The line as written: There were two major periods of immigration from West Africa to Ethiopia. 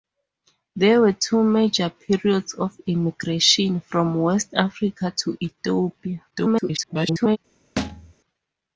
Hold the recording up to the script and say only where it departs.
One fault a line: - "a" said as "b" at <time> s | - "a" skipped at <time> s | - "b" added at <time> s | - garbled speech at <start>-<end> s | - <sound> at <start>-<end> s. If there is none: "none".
- garbled speech at 6.3-7.4 s
- thud at 7.8-8.1 s